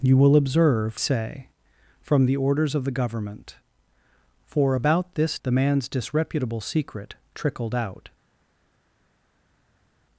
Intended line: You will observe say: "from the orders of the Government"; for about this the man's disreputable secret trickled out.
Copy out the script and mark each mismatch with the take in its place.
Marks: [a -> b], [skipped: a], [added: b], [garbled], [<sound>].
You will observe say: "from the orders of the Government"; for about this the man's disreputable secret trickled out.